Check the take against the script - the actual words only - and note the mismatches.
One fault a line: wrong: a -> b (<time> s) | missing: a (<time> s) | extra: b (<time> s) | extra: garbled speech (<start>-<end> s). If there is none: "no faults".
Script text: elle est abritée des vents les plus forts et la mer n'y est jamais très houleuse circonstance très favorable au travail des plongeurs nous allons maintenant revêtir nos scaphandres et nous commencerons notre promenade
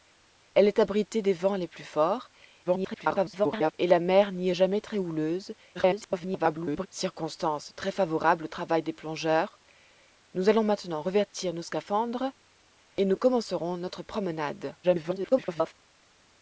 extra: garbled speech (2.7-3.7 s)
extra: garbled speech (5.7-6.9 s)
extra: garbled speech (14.8-15.7 s)